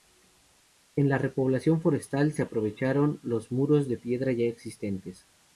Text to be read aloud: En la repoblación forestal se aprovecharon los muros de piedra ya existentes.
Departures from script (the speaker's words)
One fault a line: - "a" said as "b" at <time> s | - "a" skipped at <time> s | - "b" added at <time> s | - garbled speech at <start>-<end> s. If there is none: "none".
none